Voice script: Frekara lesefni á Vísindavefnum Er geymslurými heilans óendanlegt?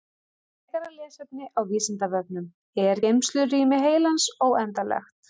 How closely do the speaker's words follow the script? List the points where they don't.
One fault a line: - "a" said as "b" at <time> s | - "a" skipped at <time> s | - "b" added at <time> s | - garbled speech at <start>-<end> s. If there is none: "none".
none